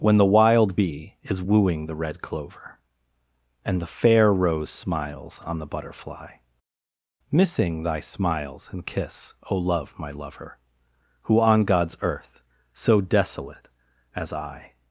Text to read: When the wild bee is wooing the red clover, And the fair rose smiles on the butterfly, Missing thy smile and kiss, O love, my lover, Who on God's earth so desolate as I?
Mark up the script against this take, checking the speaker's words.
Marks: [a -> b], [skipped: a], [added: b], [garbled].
When the wild bee is wooing the red clover, And the fair rose smiles on the butterfly, Missing thy [smile -> smiles] and kiss, O love, my lover, Who on God's earth so desolate as I?